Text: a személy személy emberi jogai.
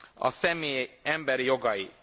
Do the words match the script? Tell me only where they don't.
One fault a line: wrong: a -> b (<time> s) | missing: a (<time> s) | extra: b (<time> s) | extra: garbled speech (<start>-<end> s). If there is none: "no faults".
missing: személy (0.9 s)